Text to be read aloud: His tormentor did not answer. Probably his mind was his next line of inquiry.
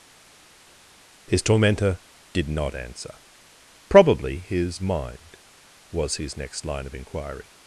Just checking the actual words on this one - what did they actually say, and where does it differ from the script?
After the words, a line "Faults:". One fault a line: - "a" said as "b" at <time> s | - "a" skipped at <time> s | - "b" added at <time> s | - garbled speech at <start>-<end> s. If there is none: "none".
His tormentor did not answer. Probably his mind was his next line of inquiry.
Faults:
none